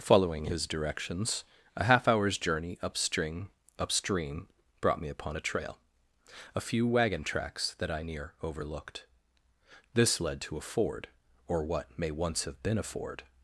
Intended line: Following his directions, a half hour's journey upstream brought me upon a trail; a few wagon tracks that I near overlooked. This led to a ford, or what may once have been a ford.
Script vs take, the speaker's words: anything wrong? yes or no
yes